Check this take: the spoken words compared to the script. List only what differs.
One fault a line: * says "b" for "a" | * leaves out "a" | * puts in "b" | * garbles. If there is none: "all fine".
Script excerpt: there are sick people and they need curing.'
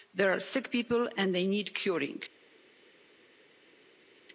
all fine